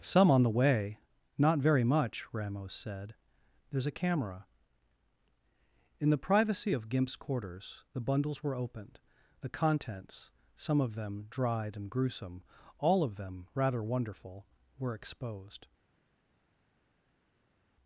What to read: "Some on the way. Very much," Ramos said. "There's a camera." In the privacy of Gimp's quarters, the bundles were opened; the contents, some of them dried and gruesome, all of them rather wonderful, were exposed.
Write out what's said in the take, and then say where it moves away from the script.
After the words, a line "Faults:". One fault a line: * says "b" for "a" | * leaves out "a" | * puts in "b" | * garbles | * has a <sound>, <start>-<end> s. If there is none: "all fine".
"Some on the way. Not very much," Ramos said. "There's a camera." In the privacy of Gimp's quarters, the bundles were opened; the contents, some of them dried and gruesome, all of them rather wonderful, were exposed.
Faults:
* puts in "Not"